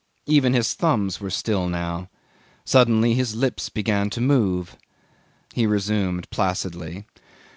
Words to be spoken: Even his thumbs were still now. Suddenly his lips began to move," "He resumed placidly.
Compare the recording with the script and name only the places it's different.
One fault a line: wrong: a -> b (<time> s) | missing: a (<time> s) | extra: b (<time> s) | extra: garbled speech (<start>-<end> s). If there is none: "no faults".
no faults